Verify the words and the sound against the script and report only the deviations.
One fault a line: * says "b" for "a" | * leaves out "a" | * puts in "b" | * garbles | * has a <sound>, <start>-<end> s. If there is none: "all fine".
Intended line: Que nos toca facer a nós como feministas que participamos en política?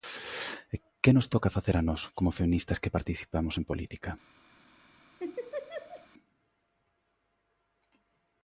* has a laugh, 5.2-6.1 s